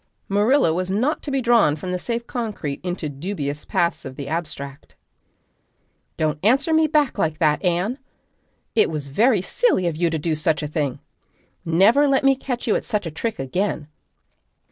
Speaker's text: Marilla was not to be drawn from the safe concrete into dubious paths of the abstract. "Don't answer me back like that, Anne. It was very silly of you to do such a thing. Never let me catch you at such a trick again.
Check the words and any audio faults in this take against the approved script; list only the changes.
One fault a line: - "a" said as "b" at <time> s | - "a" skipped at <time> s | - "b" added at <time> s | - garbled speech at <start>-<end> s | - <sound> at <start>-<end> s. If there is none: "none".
none